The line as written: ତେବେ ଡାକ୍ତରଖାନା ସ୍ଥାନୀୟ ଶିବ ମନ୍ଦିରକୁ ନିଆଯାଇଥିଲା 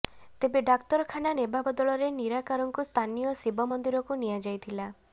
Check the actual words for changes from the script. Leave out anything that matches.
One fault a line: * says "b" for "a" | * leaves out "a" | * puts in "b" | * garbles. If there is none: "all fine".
* puts in "ନେବା ବଦଳରେ ନିରାକାରଙ୍କୁ"